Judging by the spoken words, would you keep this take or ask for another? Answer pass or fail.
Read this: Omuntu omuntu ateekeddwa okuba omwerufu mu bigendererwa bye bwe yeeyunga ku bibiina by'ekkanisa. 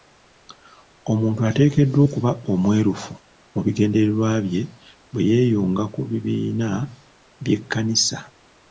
fail